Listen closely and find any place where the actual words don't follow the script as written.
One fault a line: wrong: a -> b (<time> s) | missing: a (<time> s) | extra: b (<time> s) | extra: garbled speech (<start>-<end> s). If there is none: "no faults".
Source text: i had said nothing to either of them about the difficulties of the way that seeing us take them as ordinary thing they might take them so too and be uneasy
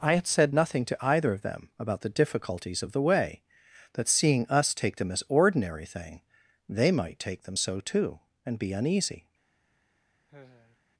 no faults